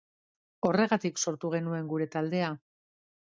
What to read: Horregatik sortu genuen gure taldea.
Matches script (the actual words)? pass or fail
pass